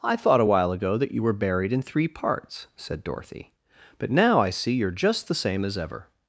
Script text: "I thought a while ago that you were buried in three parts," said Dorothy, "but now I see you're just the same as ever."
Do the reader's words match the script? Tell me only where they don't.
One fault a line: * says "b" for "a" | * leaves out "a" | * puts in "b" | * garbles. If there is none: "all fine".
all fine